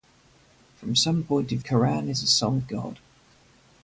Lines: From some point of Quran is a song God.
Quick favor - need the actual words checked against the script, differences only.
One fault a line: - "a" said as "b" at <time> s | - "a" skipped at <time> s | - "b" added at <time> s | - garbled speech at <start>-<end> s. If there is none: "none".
none